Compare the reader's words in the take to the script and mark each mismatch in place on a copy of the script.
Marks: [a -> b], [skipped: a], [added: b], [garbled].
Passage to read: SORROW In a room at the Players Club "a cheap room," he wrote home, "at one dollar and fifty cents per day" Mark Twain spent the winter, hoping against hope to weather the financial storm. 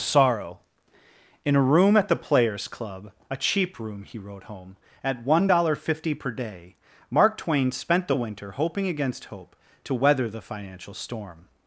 SORROW In a room at the Players Club "a cheap room," he wrote home, "at one dollar and fifty cents per day" Mark Twain spent the winter, hoping against hope to weather the financial storm.